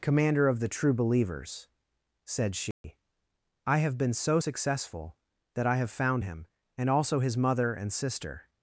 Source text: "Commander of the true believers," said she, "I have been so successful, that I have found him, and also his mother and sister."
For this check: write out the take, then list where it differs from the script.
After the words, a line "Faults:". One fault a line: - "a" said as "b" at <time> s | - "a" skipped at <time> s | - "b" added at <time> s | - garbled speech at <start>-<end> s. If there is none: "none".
"Commander of the true believers," said she, "I have been so successful, that I have found him, and also his mother and sister."
Faults:
none